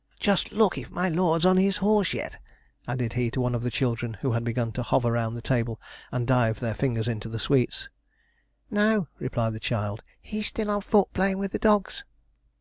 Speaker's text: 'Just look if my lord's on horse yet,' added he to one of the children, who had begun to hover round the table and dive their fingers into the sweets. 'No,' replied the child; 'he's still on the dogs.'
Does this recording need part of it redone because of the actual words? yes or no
yes